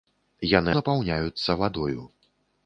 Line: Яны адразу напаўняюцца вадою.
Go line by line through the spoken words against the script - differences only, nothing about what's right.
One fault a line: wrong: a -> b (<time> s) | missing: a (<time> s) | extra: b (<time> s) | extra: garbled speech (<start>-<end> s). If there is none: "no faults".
missing: адразу (0.7 s)